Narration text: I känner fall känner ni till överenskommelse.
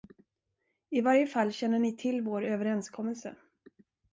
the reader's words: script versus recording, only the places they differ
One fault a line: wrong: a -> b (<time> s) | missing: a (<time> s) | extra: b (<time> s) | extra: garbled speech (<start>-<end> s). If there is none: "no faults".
wrong: känner -> varje (1.0 s)
extra: vår (2.2 s)